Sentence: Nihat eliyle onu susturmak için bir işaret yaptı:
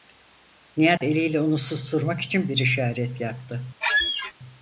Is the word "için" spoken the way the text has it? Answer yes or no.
yes